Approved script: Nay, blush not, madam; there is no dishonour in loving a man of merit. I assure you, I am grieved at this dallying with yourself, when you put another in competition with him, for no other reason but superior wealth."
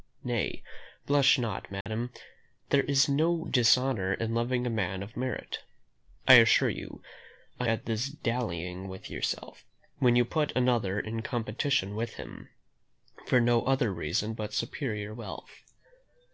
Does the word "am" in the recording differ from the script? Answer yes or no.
yes